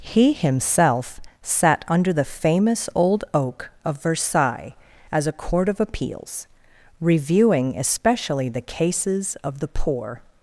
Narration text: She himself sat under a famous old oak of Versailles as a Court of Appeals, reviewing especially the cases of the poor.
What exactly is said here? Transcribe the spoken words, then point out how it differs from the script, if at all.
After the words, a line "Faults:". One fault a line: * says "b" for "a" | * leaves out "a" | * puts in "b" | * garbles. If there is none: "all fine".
He himself sat under the famous old oak of Versailles as a Court of Appeals, reviewing especially the cases of the poor.
Faults:
* says "He" for "She"
* says "the" for "a"